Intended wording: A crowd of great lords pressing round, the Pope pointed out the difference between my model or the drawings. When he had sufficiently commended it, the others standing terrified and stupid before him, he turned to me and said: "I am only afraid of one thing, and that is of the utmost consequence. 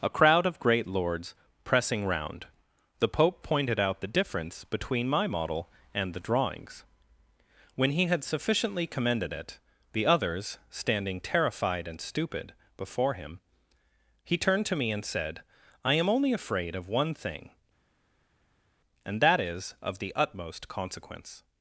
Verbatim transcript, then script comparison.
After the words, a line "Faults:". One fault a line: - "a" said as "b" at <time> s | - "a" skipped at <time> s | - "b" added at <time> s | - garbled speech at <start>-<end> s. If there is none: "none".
A crowd of great lords pressing round, the Pope pointed out the difference between my model and the drawings. When he had sufficiently commended it, the others standing terrified and stupid before him, he turned to me and said: "I am only afraid of one thing, and that is of the utmost consequence.
Faults:
- "or" said as "and" at 5.9 s